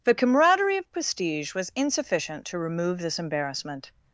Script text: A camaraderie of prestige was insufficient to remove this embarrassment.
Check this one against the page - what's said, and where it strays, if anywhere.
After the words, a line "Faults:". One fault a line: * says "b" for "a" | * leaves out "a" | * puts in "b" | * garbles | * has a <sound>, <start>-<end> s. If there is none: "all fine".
The camaraderie of prestige was insufficient to remove this embarrassment.
Faults:
* says "The" for "A"